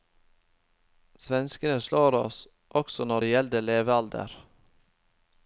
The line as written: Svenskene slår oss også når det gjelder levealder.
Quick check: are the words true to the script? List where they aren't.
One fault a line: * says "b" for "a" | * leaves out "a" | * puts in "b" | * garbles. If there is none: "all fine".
all fine